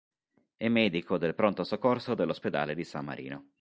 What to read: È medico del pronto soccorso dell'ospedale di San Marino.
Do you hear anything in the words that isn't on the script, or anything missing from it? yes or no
no